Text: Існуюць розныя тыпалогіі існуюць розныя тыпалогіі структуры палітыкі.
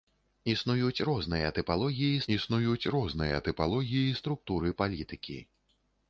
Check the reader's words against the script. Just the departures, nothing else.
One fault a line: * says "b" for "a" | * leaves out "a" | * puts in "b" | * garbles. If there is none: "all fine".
all fine